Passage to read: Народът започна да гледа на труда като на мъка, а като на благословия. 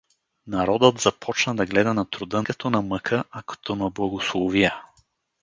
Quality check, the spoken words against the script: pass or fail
pass